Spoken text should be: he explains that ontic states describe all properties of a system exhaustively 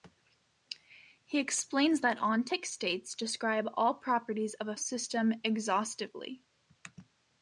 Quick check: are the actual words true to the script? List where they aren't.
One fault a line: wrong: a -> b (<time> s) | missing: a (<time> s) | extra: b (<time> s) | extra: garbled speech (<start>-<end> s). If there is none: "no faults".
no faults